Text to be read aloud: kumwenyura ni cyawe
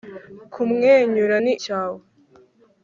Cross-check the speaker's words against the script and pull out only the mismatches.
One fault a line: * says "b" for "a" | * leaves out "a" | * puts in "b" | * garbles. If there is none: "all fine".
all fine